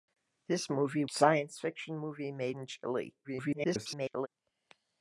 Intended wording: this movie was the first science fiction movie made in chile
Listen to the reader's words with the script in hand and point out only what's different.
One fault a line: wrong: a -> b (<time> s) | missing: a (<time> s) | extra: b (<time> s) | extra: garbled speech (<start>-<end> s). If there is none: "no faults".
missing: was the first (1.1 s)
extra: garbled speech (3.2-4.3 s)